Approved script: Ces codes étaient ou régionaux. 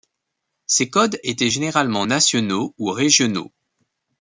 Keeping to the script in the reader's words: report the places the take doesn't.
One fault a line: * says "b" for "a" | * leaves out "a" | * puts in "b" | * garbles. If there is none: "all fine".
* puts in "généralement nationaux"